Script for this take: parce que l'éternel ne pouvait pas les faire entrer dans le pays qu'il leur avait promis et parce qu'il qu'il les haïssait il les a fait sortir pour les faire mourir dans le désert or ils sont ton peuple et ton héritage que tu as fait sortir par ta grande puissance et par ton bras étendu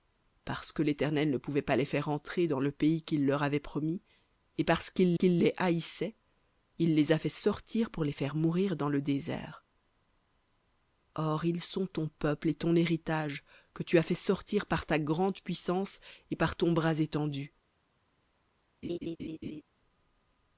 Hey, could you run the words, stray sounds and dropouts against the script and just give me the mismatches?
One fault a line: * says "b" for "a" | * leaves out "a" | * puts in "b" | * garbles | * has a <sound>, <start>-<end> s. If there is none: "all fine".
* has a laugh, 18.8-19.6 s